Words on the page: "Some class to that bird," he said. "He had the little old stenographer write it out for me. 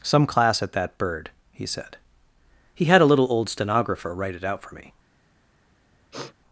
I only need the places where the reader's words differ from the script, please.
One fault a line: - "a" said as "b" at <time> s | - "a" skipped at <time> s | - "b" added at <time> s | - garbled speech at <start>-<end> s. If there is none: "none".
- "to" said as "at" at 0.6 s
- "the" said as "a" at 3.0 s